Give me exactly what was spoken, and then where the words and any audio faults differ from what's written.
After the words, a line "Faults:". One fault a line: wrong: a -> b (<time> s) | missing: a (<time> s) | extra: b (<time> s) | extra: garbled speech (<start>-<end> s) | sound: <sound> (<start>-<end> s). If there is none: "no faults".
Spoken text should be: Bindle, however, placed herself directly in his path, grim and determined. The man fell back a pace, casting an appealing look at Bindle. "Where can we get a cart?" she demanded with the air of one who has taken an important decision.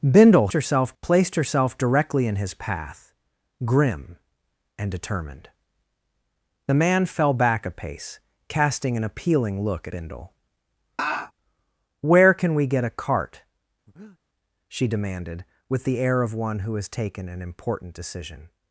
Bindle, herself, placed herself directly in his path, grim and determined. The man fell back a pace, casting an appealing look Bindle. "Where can we get a cart?" she demanded with the air of one who has taken an important decision.
Faults:
wrong: however -> herself (0.5 s)
missing: at (9.9 s)
sound: laugh (11.0-11.3 s)
sound: breath (13.9-14.2 s)